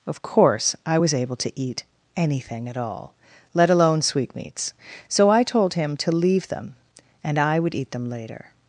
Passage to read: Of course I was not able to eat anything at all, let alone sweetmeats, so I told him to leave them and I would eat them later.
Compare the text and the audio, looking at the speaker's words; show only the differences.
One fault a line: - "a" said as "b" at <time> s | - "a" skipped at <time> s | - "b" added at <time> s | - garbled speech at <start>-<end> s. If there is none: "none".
- "not" skipped at 1.1 s